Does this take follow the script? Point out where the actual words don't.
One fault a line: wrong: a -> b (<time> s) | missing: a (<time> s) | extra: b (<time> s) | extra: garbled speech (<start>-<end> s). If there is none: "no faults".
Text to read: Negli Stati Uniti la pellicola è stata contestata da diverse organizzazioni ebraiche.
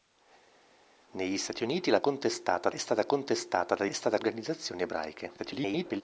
wrong: pellicola -> contestata (2.0 s)
wrong: diverse -> stata (3.9 s)
extra: garbled speech (5.4-6.0 s)